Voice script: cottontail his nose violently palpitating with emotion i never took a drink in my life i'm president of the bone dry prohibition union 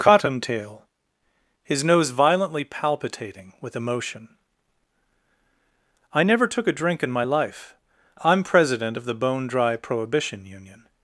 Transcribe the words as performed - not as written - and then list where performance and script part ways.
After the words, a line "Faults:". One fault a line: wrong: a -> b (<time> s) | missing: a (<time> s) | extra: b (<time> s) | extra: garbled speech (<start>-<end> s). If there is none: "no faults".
cottontail his nose violently palpitating with emotion i never took a drink in my life i'm president of the bone dry prohibition union
Faults:
no faults